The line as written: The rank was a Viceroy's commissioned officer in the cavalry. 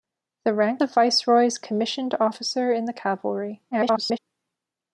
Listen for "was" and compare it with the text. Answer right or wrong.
wrong